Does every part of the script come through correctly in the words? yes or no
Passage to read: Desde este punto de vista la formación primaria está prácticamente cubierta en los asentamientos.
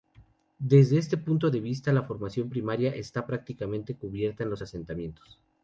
yes